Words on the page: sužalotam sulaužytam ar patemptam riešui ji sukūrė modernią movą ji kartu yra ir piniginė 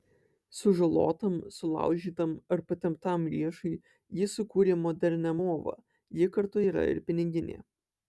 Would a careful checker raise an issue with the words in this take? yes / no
no